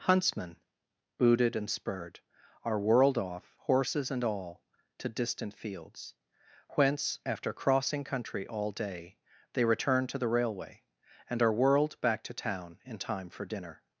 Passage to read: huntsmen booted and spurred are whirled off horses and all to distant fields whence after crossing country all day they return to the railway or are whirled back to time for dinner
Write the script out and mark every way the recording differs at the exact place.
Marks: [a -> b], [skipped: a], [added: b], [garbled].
huntsmen booted and spurred are whirled off horses and all to distant fields whence after crossing country all day they return to the railway [or -> and] are whirled back to [added: town in] time for dinner